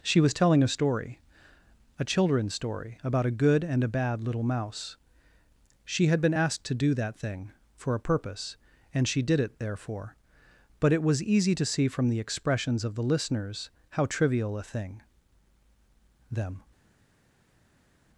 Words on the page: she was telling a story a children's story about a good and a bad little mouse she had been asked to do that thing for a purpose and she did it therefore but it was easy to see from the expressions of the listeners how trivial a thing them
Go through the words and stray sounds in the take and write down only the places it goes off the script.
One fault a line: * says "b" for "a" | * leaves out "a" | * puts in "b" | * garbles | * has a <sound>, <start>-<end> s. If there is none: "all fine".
all fine